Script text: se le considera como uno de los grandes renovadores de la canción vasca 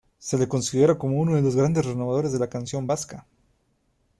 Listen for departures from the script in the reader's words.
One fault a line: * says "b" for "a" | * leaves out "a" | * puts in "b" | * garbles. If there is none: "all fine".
all fine